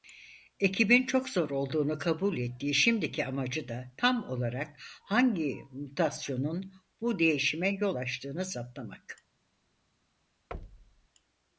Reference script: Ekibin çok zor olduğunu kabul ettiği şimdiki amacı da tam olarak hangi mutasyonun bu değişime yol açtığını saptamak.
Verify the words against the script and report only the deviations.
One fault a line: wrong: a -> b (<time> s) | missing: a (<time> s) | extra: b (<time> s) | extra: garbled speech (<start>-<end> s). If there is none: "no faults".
no faults